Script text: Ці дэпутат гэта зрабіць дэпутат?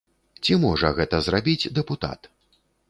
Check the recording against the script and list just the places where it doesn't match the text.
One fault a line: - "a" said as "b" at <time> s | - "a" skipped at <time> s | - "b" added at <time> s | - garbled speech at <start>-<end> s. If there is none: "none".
- "дэпутат" said as "можа" at 0.6 s